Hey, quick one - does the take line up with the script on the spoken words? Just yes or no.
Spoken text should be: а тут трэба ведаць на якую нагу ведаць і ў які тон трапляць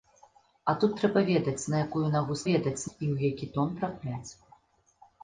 yes